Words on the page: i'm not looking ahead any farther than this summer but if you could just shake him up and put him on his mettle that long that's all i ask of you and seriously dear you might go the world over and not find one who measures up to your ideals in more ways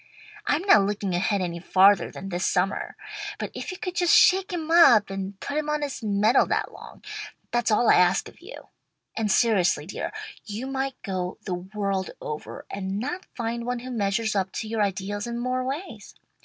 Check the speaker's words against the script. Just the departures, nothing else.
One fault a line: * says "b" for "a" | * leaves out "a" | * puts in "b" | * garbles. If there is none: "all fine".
all fine